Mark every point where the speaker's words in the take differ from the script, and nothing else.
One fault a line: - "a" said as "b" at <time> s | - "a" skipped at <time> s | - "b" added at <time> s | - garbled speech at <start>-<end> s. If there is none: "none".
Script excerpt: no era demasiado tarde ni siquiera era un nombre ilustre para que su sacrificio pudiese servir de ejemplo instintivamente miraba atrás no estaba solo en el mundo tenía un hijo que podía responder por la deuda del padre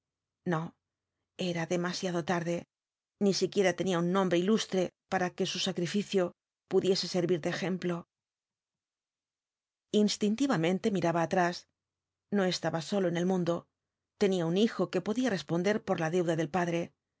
- "era" said as "tenía" at 3.8 s